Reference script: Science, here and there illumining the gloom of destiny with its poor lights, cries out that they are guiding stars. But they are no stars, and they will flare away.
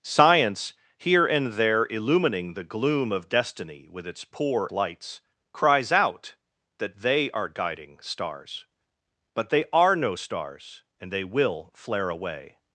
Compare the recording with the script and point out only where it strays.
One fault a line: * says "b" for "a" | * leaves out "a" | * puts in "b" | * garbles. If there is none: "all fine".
all fine